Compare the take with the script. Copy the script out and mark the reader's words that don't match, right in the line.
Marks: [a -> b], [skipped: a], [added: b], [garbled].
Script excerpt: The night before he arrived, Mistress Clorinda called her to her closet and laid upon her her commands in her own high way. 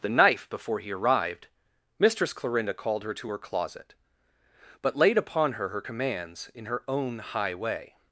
The [night -> knife] before he arrived, Mistress Clorinda called her to her closet [and -> but] laid upon her her commands in her own high way.